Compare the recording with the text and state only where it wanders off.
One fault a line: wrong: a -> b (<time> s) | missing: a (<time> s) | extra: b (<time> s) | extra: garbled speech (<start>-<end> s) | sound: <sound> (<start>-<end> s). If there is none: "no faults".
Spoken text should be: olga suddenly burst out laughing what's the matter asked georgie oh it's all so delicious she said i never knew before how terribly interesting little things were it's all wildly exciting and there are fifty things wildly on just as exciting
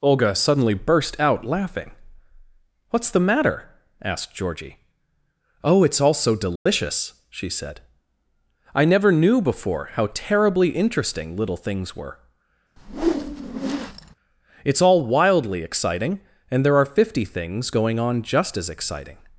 sound: dropout (6.6-6.7 s)
sound: whoosh (12.8-14.1 s)
wrong: wildly -> going (17.7 s)